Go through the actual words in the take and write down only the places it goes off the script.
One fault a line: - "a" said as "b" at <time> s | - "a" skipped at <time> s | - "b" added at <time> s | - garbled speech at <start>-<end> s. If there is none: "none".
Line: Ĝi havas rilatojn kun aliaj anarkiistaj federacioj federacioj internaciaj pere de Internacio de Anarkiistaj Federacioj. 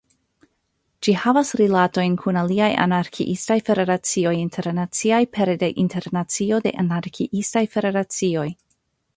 - "federacioj" skipped at 4.3 s